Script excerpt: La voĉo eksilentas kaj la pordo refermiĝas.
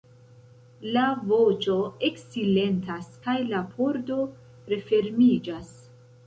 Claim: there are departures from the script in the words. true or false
false